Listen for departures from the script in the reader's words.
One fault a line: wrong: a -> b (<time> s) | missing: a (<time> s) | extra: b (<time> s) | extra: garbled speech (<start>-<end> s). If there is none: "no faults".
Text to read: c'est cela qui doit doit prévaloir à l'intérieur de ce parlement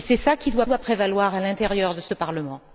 no faults